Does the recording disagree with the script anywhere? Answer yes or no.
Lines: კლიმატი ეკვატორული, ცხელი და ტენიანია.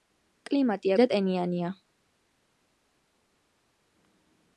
yes